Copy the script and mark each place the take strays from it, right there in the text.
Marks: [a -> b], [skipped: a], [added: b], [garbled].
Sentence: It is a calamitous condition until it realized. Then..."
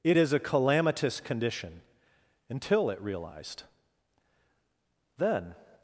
It is a calamitous condition until it realized. Then..."